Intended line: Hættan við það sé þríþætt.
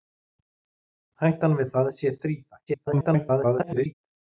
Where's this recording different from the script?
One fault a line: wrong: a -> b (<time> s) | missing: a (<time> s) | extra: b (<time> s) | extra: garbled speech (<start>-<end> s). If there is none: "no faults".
extra: garbled speech (2.7-3.9 s)